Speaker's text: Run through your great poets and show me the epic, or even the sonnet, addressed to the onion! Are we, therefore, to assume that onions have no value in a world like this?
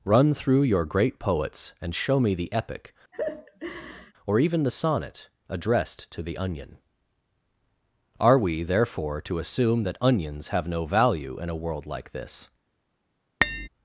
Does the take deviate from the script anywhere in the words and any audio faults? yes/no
yes